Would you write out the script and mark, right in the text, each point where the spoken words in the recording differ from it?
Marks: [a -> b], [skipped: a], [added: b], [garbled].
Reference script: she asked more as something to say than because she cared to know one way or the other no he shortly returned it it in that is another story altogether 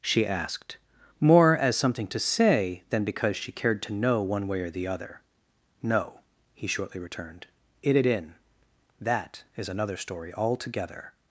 she asked more as something to say than because she cared to know one way or the other no he shortly returned it it in that is another story altogether